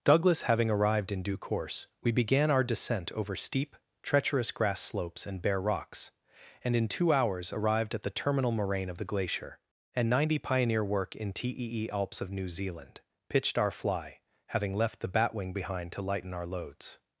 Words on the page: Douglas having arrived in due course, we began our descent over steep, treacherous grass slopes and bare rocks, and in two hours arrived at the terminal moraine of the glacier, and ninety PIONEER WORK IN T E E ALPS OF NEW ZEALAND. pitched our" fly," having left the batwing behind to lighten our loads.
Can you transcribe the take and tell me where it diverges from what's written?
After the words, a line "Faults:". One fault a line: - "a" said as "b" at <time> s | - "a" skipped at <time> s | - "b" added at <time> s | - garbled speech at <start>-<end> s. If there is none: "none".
Douglas having arrived in due course, we began our descent over steep, treacherous grass slopes and bare rocks, and in two hours arrived at the terminal moraine of the glacier, and ninety PIONEER WORK IN T E E ALPS OF NEW ZEALAND. pitched our" fly," having left the batwing behind to lighten our loads.
Faults:
none